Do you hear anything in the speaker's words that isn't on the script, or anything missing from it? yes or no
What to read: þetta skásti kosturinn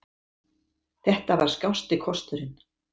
yes